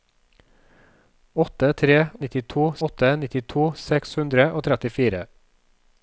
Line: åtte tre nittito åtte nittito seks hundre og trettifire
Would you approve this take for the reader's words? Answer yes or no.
yes